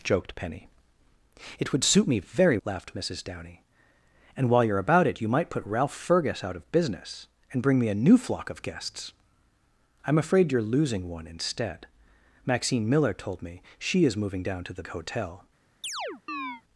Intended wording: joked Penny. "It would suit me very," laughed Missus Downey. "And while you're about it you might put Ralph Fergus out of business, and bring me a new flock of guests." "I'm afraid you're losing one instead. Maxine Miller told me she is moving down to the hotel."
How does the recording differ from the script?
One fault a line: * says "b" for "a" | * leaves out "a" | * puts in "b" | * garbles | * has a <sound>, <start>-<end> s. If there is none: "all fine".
* has a chirp, 15.8-16.6 s